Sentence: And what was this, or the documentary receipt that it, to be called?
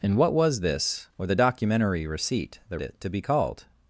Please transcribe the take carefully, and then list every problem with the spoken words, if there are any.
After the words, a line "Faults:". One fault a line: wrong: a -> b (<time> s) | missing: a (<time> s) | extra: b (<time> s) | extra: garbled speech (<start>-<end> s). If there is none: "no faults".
And what was this, or the documentary receipt that it, to be called?
Faults:
no faults